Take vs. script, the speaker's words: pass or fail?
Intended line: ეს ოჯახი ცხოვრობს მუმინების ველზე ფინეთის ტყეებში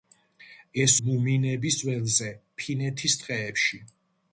fail